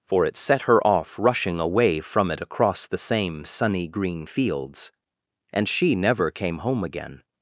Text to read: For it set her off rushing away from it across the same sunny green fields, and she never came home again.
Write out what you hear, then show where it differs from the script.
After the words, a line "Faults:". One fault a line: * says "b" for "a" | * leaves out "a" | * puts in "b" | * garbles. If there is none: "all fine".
For it set her off rushing away from it across the same sunny green fields, and she never came home again.
Faults:
all fine